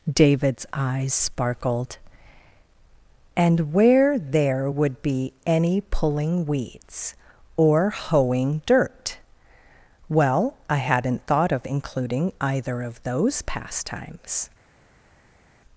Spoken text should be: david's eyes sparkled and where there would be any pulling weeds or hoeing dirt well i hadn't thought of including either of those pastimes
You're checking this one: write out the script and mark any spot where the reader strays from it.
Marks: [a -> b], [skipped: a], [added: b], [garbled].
david's eyes sparkled and where there would be any pulling weeds or hoeing dirt well i hadn't thought of including either of those pastimes